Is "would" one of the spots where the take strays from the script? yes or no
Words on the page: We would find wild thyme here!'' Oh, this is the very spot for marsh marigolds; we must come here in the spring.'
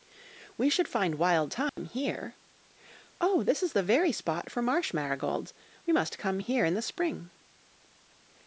yes